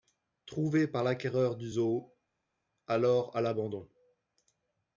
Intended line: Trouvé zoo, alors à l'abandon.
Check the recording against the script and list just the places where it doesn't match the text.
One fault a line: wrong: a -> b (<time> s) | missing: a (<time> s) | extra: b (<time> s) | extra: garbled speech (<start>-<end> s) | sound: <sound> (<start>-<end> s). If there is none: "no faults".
extra: par l'acquéreur du (0.9 s)